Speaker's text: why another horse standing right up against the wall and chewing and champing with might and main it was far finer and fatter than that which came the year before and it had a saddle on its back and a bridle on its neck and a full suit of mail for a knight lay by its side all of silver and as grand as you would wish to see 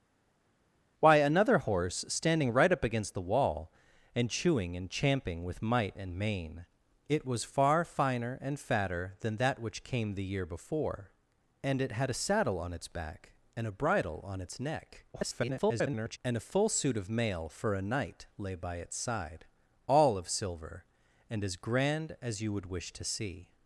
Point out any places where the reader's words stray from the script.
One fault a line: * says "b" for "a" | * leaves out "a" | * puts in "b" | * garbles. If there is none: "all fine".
* garbles